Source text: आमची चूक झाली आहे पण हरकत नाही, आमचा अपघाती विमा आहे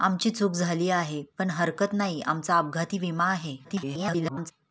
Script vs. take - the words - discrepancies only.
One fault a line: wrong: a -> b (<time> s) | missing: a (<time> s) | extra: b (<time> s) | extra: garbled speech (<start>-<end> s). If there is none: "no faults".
extra: garbled speech (3.6-4.5 s)